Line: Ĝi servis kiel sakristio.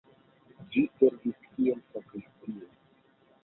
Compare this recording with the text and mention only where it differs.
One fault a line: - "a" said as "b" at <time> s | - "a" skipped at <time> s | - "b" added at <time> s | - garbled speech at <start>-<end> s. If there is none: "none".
none